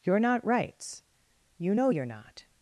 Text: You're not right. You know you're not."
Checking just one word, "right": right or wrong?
wrong